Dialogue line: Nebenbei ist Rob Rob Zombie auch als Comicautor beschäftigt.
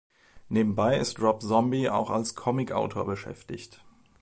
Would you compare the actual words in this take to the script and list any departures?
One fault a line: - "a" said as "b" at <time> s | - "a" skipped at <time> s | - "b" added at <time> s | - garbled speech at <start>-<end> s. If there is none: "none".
- "Rob" skipped at 1.4 s